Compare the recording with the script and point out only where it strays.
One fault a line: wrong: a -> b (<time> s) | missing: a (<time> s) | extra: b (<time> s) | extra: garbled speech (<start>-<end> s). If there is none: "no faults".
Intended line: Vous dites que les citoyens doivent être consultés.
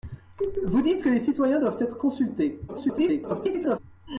extra: garbled speech (2.7-3.8 s)